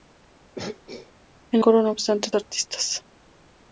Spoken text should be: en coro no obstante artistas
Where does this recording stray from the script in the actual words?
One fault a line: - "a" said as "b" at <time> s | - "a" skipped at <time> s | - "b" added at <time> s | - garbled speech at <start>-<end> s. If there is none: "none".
none